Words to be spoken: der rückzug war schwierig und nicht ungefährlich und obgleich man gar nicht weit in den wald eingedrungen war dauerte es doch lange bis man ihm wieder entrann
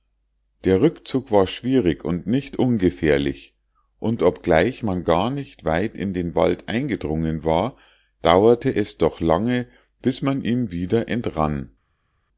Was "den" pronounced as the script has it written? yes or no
yes